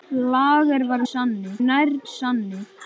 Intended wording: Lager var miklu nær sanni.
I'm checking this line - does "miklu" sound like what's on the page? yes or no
no